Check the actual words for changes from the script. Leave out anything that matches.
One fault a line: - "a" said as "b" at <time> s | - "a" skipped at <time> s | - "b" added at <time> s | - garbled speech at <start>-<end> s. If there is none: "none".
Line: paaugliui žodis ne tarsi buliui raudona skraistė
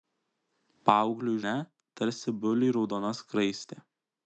- "žodis" skipped at 1.4 s